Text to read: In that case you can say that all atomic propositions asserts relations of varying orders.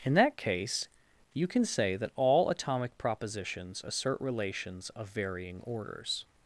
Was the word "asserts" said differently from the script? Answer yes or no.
yes